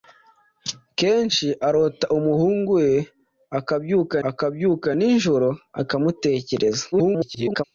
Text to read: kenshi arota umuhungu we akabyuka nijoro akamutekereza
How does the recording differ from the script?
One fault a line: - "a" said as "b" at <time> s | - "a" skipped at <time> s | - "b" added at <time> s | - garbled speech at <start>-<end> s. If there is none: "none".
- "akabyuka" added at 4.3 s
- garbled speech at 6.9-7.6 s